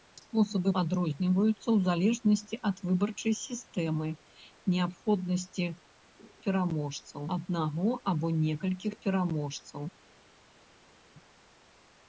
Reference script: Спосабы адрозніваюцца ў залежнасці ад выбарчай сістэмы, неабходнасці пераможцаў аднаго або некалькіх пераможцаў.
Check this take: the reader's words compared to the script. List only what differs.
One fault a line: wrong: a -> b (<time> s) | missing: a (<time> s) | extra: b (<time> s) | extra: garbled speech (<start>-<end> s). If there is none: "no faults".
no faults